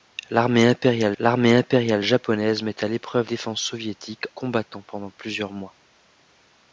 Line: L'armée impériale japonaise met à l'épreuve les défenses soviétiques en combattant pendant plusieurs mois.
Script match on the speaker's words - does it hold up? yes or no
no